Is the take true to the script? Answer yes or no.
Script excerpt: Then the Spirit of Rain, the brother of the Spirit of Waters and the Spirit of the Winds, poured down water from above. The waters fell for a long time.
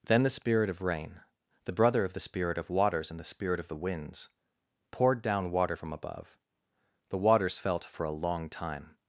no